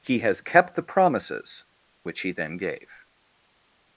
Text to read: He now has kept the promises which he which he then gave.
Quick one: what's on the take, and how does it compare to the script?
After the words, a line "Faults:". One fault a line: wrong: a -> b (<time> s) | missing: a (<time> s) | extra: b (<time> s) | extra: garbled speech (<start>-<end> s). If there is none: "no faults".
He has kept the promises which he then gave.
Faults:
missing: now (0.2 s)
missing: which he (2.3 s)